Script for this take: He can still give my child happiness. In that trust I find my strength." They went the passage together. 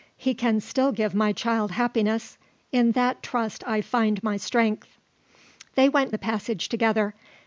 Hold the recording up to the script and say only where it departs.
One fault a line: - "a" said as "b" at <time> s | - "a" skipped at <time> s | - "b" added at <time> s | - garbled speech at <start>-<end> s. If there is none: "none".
none